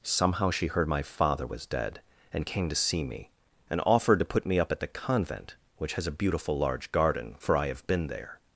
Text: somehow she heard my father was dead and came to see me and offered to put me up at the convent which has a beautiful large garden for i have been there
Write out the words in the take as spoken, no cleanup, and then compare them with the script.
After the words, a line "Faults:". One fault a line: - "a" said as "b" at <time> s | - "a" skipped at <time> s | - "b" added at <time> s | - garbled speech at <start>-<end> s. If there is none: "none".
somehow she heard my father was dead and came to see me and offered to put me up at the convent which has a beautiful large garden for i have been there
Faults:
none